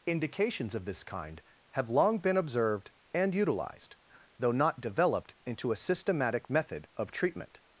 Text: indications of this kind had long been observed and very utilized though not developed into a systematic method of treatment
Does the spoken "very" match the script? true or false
false